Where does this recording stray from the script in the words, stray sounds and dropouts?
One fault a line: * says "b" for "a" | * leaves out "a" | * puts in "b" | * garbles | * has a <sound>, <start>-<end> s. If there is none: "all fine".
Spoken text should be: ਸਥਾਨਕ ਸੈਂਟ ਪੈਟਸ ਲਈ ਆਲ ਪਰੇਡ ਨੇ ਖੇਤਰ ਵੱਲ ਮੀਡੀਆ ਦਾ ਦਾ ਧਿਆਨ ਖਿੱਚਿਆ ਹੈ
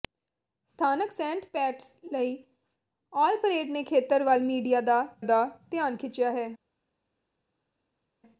all fine